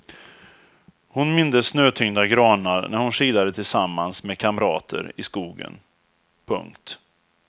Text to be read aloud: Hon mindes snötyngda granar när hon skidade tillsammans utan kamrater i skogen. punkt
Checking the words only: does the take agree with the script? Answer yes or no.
no